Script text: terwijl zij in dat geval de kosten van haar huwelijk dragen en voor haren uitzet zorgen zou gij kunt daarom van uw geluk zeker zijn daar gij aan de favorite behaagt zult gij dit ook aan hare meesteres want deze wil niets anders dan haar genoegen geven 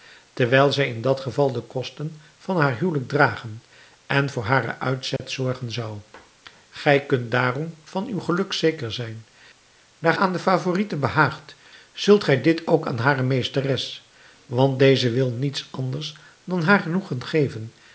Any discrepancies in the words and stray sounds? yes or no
yes